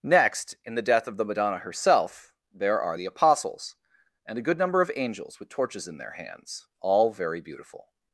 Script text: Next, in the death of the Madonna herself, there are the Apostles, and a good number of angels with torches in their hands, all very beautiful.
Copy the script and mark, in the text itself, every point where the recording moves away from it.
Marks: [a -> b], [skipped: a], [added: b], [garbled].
Next, in the death of the Madonna herself, there are the Apostles, and a good number of angels with torches in their hands, all very beautiful.